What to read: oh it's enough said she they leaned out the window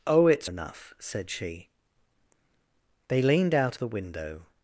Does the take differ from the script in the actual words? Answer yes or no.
no